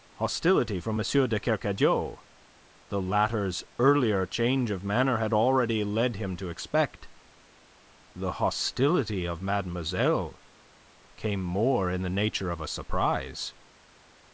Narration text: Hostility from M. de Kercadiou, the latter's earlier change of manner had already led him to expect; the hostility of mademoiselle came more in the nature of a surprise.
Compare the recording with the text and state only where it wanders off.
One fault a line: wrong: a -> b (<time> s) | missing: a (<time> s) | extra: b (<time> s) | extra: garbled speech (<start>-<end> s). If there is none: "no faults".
no faults